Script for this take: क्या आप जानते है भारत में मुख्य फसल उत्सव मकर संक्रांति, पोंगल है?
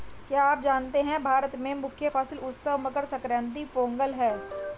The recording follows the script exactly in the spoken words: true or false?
true